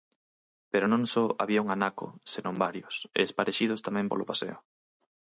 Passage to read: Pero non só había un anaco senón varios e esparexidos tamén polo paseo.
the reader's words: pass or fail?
pass